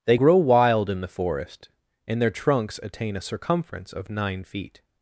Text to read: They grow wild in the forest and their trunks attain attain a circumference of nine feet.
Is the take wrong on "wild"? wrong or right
right